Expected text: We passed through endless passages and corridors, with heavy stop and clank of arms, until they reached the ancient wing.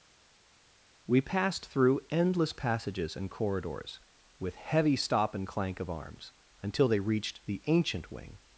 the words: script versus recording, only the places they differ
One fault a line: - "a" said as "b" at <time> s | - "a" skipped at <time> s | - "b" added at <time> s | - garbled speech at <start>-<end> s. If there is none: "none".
none